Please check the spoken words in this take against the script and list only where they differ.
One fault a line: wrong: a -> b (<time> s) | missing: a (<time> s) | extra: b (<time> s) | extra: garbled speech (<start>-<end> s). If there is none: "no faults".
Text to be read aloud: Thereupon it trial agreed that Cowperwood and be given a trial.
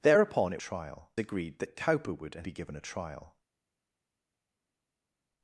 no faults